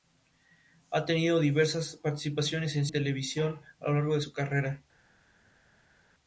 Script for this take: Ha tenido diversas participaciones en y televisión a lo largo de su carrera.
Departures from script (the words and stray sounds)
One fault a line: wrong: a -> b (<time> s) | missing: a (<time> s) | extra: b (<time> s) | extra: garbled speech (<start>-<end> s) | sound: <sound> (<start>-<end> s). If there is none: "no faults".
no faults